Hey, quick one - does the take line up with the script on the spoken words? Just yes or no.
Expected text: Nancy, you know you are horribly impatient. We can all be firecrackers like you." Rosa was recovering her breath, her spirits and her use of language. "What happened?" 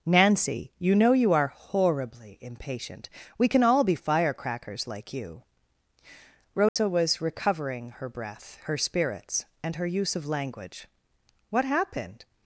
yes